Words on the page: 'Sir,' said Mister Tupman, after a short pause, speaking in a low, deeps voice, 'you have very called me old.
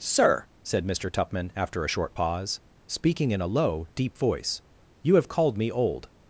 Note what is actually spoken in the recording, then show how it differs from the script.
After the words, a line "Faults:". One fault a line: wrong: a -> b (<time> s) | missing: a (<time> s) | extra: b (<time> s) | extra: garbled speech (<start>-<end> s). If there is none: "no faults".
'Sir,' said Mister Tupman, after a short pause, speaking in a low, deep voice, 'you have called me old.
Faults:
wrong: deeps -> deep (4.0 s)
missing: very (5.3 s)